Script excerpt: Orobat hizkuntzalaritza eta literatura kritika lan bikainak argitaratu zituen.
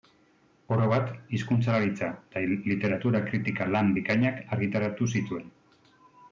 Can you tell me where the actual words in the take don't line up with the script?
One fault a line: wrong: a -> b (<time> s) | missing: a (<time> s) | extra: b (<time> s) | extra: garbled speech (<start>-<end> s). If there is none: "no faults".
no faults